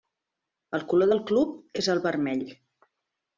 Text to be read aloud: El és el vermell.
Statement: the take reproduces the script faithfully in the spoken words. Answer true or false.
false